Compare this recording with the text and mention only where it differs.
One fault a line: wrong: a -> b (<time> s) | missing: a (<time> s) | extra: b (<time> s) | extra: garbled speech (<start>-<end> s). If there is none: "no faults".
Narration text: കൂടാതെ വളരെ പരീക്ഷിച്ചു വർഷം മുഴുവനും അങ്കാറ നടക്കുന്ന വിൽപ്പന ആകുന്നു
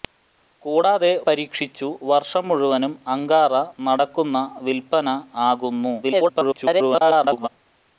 missing: വളരെ (1.1 s)
extra: garbled speech (6.0-7.5 s)